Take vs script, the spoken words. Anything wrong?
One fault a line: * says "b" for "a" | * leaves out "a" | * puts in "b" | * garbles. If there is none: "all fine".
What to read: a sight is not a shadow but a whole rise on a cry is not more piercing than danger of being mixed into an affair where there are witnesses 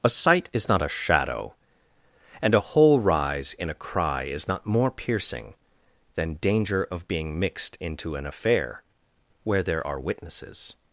* says "and" for "but"
* says "in" for "on"